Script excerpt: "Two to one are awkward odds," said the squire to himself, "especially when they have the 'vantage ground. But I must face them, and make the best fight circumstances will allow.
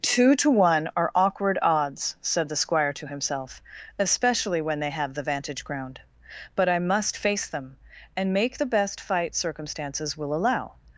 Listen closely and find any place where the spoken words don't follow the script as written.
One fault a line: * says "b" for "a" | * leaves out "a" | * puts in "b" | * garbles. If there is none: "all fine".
all fine